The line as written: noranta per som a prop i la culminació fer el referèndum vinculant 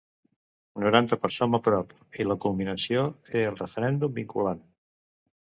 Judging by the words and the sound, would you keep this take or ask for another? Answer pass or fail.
pass